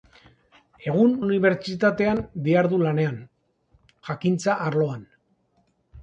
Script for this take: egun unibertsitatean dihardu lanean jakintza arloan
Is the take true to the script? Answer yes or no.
yes